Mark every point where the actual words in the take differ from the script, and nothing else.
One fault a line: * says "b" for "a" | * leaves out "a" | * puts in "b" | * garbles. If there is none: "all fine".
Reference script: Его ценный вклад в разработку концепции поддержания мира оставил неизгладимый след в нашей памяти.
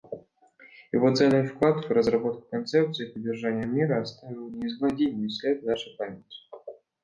all fine